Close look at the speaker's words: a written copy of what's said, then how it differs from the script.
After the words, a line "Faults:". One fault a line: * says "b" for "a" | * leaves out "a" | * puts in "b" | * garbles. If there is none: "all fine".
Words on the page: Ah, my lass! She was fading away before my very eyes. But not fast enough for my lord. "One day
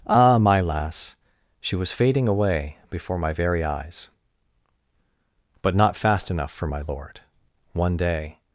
Ah, my lass! She was fading away before my very eyes. But not fast enough for my lord. "One day
Faults:
all fine